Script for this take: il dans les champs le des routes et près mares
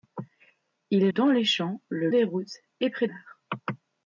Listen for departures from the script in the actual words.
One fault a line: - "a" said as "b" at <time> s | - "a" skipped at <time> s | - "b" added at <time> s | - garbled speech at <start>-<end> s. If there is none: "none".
none